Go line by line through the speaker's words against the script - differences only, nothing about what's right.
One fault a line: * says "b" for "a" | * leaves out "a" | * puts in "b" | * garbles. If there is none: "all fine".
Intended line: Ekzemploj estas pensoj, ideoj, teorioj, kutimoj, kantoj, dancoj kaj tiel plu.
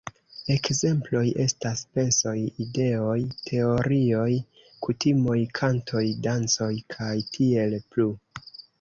all fine